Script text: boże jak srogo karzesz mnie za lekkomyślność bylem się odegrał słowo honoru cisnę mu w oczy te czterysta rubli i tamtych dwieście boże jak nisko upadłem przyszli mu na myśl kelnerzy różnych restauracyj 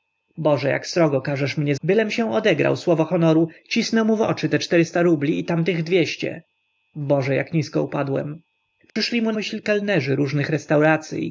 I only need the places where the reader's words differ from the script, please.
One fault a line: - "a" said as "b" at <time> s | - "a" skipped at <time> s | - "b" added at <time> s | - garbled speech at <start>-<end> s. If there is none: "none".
- "za lekkomyślność" skipped at 1.8 s
- "na" skipped at 9.3 s